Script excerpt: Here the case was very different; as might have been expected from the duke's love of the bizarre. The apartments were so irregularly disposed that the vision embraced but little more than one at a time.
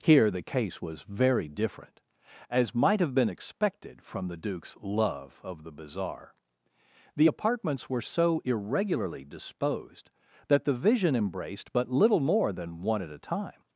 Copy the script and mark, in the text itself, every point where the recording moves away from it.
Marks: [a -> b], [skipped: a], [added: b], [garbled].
Here the case was very different; as might have been expected from the duke's love of the bizarre. The apartments were so irregularly disposed that the vision embraced but little more than one at a time.